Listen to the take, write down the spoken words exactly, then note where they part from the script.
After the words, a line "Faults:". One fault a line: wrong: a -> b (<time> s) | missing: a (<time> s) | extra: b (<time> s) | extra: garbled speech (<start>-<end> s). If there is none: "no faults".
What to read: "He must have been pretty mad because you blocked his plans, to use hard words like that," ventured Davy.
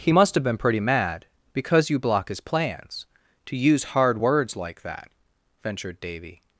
"He must have been pretty mad because you block his plans, to use hard words like that," ventured Davy.
Faults:
wrong: blocked -> block (2.0 s)